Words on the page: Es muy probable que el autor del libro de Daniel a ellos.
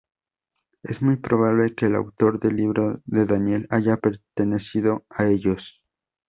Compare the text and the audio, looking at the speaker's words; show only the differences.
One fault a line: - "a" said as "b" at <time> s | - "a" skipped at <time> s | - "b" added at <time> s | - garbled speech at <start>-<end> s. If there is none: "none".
- "haya pertenecido" added at 3.7 s